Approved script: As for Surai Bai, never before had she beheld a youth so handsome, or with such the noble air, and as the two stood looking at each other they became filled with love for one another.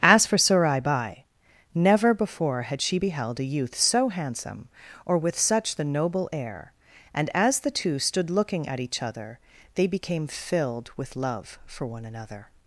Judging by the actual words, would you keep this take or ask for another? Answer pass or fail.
pass